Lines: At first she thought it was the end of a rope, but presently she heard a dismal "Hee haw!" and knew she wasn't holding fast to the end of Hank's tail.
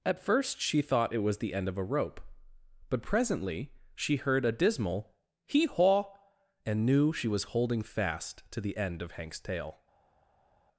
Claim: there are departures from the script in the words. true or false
true